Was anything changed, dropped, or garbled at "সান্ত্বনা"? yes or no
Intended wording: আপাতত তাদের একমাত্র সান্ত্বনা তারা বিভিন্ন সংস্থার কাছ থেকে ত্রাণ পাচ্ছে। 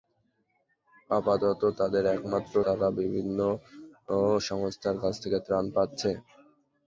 yes